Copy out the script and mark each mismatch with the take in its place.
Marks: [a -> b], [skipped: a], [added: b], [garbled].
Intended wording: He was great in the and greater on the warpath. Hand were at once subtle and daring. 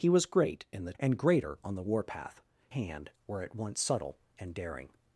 He was great in the and greater on the warpath. Hand were at once subtle and daring.